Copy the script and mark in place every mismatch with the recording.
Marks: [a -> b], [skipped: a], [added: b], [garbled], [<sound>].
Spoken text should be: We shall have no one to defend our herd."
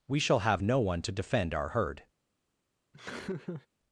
We shall have no one to defend our herd." [laugh]